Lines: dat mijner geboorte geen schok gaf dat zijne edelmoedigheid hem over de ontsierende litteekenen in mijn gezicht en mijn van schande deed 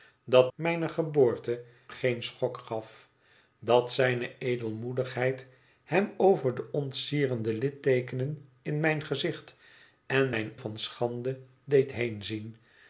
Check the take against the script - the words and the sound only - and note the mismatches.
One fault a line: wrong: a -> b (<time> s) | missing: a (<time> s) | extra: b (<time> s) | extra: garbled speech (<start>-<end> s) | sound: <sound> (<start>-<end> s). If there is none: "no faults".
no faults